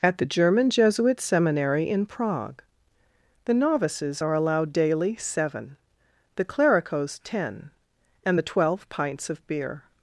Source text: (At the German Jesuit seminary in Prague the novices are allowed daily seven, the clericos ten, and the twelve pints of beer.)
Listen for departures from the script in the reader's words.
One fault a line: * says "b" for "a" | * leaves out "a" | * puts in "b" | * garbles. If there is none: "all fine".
all fine